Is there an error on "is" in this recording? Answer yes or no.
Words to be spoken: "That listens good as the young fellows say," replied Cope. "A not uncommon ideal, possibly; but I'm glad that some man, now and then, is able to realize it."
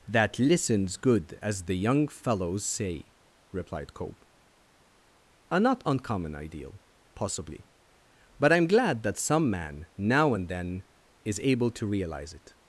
no